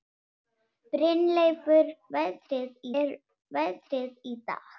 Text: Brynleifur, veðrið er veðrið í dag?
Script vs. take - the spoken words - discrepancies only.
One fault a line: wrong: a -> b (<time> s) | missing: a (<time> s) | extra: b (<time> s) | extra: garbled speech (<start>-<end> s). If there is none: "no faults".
no faults